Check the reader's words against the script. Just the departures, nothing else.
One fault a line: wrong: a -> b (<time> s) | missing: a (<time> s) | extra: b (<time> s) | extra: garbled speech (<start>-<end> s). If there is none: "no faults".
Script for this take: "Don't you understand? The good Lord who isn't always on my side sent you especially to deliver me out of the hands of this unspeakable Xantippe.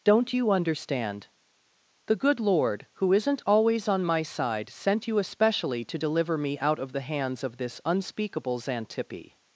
no faults